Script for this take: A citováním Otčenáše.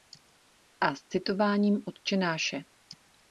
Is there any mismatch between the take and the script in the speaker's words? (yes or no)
yes